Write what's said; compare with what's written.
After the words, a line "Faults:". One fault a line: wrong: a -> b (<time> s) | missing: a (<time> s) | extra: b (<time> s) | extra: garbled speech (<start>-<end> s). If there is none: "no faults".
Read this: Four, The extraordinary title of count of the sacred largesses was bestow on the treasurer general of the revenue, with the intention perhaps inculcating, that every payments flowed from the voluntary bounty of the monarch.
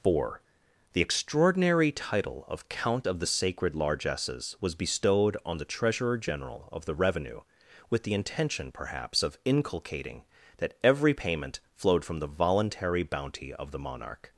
Four, The extraordinary title of count of the sacred largesses was bestowed on the treasurer general of the revenue, with the intention perhaps of inculcating, that every payment flowed from the voluntary bounty of the monarch.
Faults:
wrong: bestow -> bestowed (4.7 s)
extra: of (9.2 s)
wrong: payments -> payment (11.1 s)